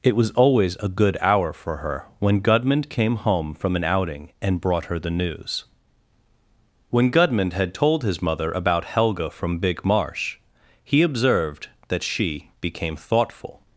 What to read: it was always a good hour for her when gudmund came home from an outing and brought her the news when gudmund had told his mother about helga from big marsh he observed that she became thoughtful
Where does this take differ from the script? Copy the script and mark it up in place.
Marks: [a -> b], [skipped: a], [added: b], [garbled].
it was always a good hour for her when gudmund came home from an outing and brought her the news when gudmund had told his mother about helga from big marsh he observed that she became thoughtful